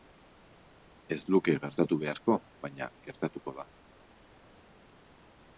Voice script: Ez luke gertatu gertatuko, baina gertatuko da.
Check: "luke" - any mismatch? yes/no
no